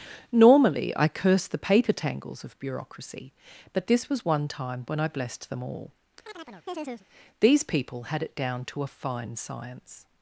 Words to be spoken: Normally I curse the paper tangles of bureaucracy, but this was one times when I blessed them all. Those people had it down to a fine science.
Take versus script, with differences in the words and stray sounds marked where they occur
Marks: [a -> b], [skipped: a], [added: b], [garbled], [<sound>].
Normally I curse the paper tangles of bureaucracy, but this was one [times -> time] when I blessed them all. [chirp] [Those -> These] people had it down to a fine science.